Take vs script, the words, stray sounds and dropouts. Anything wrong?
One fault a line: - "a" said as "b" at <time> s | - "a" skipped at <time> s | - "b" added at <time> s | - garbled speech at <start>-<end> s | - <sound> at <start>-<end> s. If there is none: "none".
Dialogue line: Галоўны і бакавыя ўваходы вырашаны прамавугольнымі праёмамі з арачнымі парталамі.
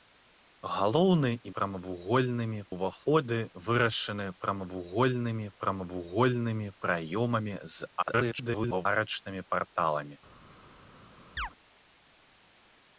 - "бакавыя" said as "прамавугольнымі" at 1.6 s
- "прамавугольнымі" added at 5.6 s
- garbled speech at 8.0-8.9 s
- chirp at 11.4-11.5 s